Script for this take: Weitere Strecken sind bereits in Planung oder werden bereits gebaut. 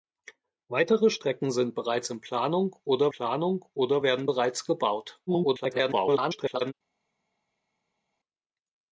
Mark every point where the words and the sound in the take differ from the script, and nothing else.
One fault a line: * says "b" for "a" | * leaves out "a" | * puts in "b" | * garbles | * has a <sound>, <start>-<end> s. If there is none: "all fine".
* puts in "Planung oder"
* garbles